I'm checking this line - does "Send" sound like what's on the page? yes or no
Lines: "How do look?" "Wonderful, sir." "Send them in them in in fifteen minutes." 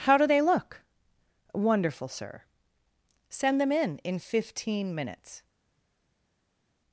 yes